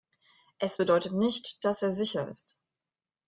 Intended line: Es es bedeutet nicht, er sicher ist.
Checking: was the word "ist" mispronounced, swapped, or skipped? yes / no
no